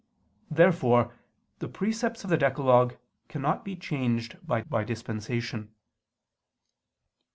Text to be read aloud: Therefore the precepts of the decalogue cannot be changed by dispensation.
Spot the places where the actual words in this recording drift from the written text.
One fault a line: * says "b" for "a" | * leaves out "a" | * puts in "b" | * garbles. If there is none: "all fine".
* puts in "by"